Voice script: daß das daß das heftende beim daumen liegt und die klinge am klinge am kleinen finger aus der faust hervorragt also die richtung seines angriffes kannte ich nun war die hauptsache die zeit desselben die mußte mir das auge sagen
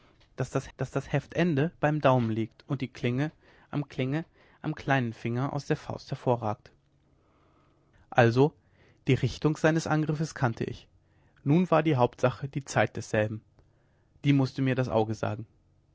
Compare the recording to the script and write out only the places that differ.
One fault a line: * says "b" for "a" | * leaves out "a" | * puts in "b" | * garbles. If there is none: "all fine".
all fine